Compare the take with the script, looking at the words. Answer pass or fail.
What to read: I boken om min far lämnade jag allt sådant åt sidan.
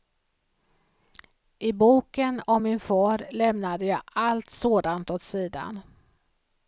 pass